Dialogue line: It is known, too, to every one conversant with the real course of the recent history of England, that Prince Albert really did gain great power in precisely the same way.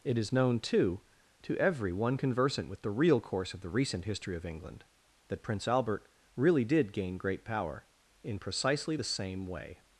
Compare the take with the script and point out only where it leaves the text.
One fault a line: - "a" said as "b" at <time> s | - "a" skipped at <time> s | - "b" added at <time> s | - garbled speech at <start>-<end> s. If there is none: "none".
none